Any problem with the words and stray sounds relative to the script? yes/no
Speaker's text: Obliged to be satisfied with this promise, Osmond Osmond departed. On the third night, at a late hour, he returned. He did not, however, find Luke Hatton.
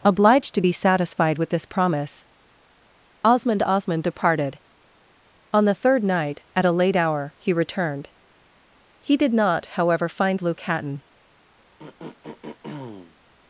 yes